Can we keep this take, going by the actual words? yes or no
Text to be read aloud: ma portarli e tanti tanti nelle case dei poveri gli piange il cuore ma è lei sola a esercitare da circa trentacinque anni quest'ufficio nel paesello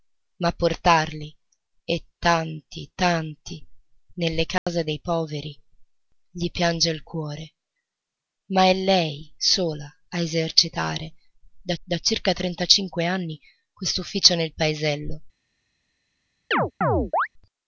no